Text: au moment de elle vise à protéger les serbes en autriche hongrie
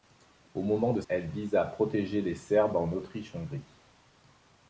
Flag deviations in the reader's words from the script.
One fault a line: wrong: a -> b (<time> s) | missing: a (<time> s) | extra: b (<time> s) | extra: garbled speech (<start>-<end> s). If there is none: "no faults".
no faults